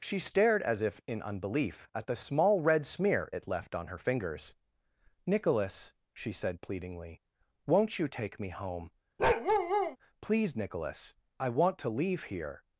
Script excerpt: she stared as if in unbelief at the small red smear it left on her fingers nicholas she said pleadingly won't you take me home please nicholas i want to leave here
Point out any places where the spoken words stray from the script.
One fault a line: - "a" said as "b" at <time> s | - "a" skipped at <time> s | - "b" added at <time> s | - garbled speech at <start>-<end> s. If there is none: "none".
none